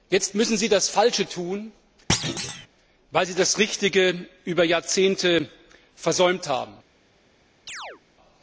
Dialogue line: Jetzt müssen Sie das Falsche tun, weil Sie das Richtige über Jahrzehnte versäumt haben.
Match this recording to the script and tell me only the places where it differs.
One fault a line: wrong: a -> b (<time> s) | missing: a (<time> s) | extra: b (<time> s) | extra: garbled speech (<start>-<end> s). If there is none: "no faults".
no faults